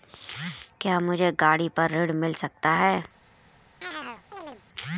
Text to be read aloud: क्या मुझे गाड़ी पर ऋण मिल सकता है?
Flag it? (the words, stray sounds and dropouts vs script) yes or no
yes